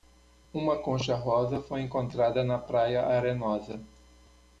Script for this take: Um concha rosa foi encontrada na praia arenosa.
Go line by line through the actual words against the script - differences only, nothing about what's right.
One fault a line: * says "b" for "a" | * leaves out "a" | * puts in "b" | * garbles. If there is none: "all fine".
* says "Uma" for "Um"